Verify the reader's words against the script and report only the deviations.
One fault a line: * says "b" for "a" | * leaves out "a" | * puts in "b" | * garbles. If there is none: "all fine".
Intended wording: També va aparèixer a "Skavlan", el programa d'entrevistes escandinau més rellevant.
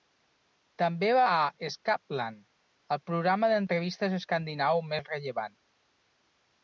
* leaves out "aparèixer"